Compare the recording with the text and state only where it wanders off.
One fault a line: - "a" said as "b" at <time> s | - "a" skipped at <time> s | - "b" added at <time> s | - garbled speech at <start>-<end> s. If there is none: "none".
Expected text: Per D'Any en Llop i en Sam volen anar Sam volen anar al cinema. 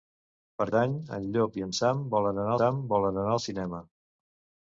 none